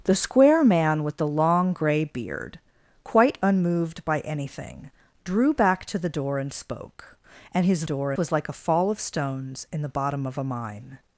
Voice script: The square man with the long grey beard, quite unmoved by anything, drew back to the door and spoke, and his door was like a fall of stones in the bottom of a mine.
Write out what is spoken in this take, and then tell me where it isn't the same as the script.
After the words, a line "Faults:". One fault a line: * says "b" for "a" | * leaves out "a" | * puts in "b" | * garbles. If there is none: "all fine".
The square man with the long grey beard, quite unmoved by anything, drew back to the door and spoke, and his door was like a fall of stones in the bottom of a mine.
Faults:
all fine